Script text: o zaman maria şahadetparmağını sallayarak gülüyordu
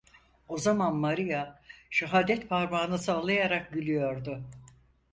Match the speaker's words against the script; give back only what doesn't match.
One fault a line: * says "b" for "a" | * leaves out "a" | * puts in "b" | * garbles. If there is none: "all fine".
all fine